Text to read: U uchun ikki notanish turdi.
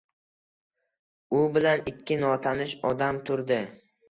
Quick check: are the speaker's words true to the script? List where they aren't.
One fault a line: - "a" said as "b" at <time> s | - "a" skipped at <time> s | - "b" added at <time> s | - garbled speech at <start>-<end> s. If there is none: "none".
- "uchun" said as "bilan" at 1.6 s
- "odam" added at 2.9 s